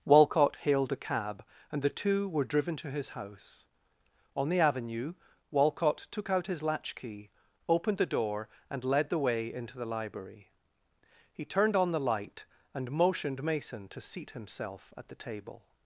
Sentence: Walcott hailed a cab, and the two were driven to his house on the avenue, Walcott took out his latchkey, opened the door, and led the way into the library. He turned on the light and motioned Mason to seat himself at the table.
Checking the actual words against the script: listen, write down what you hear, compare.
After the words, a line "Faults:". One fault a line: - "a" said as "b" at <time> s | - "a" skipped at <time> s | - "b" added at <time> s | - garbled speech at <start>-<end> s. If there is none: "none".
Walcott hailed a cab, and the two were driven to his house on the avenue, Walcott took out his latchkey, opened the door, and led the way into the library. He turned on the light and motioned Mason to seat himself at the table.
Faults:
none